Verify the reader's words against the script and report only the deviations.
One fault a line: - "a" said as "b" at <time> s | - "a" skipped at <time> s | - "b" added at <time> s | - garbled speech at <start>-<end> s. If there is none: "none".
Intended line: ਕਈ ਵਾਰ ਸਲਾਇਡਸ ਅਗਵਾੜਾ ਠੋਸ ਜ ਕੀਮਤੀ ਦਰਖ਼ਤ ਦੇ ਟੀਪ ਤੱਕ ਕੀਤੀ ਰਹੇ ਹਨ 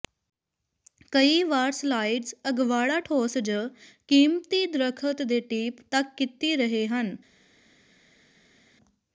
none